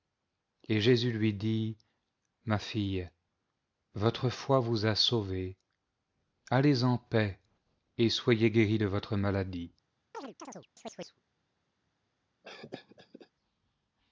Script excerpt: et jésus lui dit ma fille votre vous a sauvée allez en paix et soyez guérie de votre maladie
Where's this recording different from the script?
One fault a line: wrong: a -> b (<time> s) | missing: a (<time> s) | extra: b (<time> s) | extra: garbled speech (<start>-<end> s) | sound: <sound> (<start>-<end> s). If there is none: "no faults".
extra: foi (4.3 s)
sound: chirp (10.1-11.2 s)
sound: cough (12.4-13.3 s)